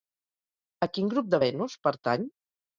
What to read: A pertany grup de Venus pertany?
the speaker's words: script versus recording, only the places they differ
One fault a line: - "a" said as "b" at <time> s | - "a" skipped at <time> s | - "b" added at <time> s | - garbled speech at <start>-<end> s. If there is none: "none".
- "pertany" said as "quin" at 0.9 s